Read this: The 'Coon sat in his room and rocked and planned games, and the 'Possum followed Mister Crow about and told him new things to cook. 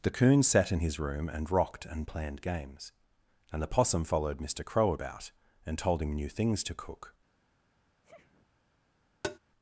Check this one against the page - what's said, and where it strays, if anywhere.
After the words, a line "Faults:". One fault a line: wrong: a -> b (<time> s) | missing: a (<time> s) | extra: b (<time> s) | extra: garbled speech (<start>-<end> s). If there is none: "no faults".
The 'Coon sat in his room and rocked and planned games, and the 'Possum followed Mister Crow about and told him new things to cook.
Faults:
no faults